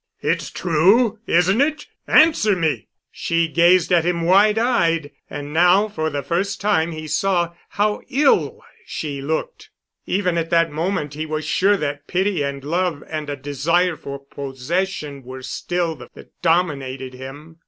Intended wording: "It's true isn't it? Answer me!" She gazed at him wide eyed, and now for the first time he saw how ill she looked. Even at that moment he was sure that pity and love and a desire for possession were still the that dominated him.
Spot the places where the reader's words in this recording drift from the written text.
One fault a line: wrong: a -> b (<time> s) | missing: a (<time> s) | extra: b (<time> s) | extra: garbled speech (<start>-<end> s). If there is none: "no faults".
no faults